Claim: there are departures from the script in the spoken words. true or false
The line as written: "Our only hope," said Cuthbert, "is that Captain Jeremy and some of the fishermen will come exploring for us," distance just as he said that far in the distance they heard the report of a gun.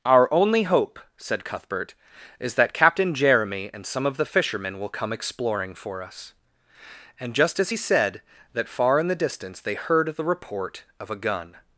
true